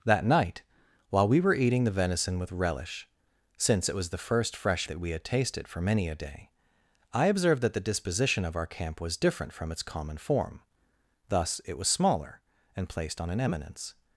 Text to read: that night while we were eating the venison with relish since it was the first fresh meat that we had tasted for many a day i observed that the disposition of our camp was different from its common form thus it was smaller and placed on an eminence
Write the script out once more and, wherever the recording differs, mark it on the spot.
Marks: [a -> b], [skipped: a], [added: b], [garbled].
that night while we were eating the venison with relish since it was the first fresh [skipped: meat] that we had tasted for many a day i observed that the disposition of our camp was different from its common form thus it was smaller and placed on an eminence